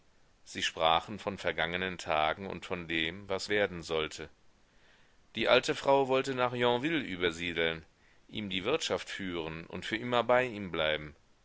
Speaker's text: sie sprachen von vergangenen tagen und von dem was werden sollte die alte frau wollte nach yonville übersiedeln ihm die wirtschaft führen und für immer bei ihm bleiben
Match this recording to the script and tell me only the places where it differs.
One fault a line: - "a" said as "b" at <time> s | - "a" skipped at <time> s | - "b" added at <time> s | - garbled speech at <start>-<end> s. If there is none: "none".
none